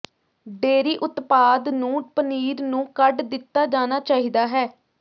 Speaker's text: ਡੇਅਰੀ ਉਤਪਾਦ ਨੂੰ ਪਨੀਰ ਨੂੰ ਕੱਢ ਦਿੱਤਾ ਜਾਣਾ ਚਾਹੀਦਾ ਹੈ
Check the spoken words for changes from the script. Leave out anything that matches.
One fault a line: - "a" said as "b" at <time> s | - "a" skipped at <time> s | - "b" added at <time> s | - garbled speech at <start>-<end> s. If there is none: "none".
none